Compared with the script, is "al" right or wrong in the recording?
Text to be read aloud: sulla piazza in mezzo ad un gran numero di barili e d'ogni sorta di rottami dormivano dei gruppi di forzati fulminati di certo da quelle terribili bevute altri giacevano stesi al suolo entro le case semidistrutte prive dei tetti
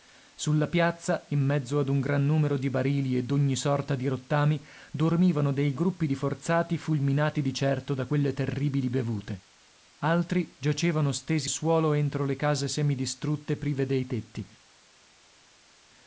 wrong